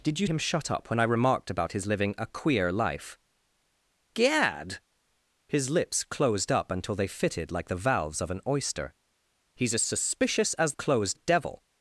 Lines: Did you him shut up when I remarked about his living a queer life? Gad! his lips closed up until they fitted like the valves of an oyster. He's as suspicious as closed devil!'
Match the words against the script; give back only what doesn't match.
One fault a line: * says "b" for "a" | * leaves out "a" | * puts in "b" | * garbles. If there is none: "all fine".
all fine